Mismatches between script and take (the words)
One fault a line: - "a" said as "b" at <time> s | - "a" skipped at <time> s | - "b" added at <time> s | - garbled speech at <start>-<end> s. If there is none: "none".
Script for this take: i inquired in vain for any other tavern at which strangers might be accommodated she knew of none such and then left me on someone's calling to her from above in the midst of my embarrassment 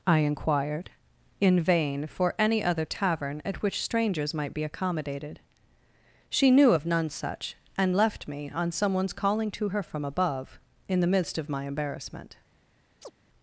- "then" skipped at 8.0 s